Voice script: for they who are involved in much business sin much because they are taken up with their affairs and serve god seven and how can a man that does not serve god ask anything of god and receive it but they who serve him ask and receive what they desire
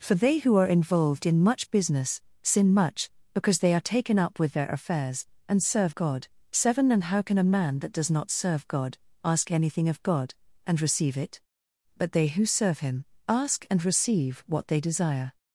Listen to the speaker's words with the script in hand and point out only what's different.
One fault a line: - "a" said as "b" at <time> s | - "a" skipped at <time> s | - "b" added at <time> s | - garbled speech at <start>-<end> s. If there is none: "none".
none